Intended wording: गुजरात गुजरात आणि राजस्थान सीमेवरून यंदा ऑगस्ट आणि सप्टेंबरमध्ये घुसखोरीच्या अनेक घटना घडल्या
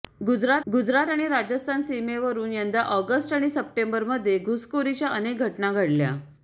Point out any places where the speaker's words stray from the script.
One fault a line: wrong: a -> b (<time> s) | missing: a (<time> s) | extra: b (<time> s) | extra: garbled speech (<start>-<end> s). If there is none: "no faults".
no faults